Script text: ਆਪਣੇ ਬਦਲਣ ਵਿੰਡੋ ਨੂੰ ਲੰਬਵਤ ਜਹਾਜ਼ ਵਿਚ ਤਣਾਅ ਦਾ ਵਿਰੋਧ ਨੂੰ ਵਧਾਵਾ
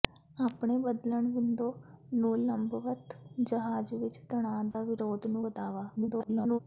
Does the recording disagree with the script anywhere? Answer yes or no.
yes